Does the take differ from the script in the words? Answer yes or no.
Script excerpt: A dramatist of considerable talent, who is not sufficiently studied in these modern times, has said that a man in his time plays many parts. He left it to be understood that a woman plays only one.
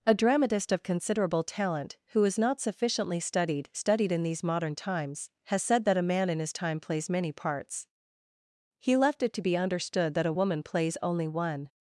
yes